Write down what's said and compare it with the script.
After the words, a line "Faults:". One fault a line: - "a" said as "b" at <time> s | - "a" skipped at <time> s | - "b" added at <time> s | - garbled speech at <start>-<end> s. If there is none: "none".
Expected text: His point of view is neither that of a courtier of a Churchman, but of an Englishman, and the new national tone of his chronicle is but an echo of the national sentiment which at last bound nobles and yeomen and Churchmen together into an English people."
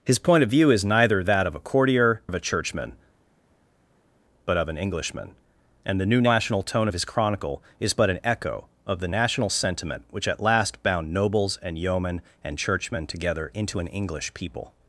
His point of view is neither that of a courtier of a Churchman, but of an Englishman, and the new national tone of his chronicle is but an echo of the national sentiment which at last bound nobles and yeomen and Churchmen together into an English people."
Faults:
none